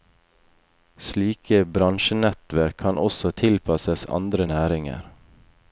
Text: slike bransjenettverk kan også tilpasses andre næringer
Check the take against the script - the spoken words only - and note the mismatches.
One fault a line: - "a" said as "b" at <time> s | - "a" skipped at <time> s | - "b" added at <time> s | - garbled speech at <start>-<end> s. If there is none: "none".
none